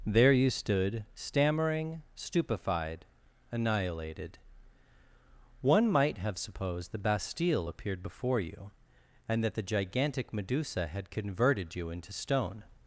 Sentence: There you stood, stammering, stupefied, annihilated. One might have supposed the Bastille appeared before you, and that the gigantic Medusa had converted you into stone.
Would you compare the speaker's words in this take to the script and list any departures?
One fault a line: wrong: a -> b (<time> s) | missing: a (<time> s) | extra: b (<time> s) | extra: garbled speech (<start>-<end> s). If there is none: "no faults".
no faults